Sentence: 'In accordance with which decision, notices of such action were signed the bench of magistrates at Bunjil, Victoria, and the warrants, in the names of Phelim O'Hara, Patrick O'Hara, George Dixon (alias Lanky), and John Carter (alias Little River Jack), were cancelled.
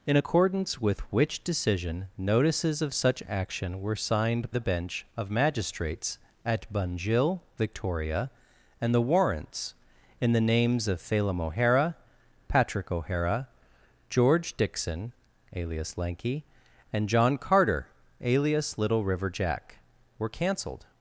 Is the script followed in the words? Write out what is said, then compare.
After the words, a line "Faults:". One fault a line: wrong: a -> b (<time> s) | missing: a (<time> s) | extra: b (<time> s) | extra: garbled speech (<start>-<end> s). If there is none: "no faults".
'In accordance with which decision, notices of such action were signed the bench of magistrates at Bunjil, Victoria, and the warrants, in the names of Phelim O'Hara, Patrick O'Hara, George Dixon (alias Lanky), and John Carter (alias Little River Jack), were cancelled.
Faults:
no faults